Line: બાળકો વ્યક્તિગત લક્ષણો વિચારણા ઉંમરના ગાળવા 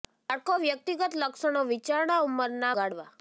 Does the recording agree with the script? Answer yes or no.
yes